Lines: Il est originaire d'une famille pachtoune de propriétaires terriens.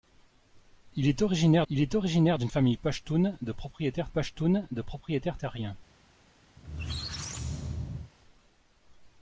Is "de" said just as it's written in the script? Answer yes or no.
yes